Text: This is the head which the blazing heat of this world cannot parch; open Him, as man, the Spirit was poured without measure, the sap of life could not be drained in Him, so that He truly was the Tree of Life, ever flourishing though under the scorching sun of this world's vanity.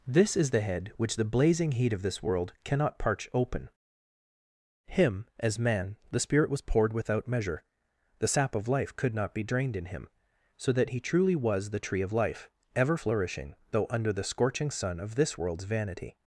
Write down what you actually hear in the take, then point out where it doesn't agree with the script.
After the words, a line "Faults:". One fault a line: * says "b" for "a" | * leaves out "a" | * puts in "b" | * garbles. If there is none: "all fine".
This is the head which the blazing heat of this world cannot parch; open Him, as man, the Spirit was poured without measure, the sap of life could not be drained in Him, so that He truly was the Tree of Life, ever flourishing though under the scorching sun of this world's vanity.
Faults:
all fine